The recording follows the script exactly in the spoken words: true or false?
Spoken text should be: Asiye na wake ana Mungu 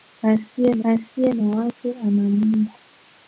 false